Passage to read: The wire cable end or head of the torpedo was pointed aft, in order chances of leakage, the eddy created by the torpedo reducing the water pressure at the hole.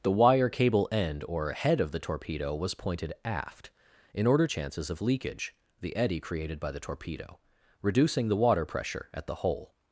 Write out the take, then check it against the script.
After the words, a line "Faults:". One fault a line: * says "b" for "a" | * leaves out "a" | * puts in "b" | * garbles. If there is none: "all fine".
The wire cable end or head of the torpedo was pointed aft, in order chances of leakage, the eddy created by the torpedo reducing the water pressure at the hole.
Faults:
all fine